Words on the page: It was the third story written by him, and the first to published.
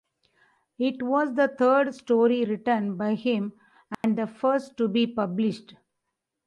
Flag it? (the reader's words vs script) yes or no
yes